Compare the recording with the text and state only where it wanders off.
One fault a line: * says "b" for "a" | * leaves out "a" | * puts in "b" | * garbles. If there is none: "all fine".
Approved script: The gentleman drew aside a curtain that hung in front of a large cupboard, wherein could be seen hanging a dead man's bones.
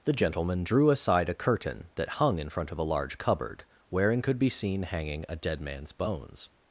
all fine